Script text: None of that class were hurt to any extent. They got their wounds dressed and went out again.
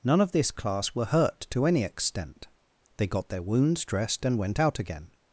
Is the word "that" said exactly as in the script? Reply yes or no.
no